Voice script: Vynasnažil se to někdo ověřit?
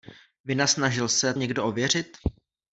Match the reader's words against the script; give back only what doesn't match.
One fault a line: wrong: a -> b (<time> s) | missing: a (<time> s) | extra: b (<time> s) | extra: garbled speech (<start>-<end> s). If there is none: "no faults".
missing: to (1.3 s)